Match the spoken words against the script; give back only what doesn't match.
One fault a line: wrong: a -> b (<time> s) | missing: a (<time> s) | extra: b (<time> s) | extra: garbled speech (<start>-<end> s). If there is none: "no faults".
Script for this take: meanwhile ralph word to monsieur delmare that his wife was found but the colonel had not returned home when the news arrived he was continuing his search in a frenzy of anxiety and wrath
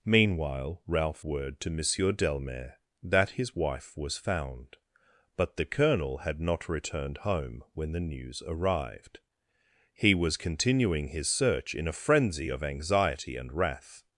no faults